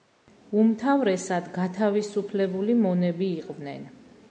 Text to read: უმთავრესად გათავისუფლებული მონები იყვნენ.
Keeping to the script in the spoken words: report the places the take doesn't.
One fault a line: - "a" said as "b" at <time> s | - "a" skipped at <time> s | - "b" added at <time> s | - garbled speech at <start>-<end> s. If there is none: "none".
none